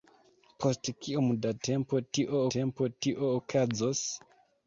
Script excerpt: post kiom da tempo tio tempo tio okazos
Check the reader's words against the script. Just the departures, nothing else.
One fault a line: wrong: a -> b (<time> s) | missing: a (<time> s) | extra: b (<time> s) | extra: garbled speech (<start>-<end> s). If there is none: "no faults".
no faults